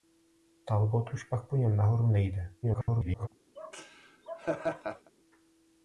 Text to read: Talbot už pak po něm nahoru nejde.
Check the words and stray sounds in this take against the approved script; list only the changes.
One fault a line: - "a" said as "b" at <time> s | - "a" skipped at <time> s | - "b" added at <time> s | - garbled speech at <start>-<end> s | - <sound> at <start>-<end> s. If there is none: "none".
- garbled speech at 2.6-3.3 s
- laugh at 3.6-5.1 s